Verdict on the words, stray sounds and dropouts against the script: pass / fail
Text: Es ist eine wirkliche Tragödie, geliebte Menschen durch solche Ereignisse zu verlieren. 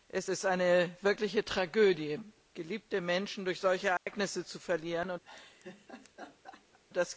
fail